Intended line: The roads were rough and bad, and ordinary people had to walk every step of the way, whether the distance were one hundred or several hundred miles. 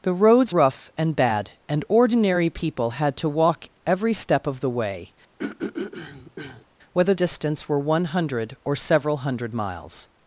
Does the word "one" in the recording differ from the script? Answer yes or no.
no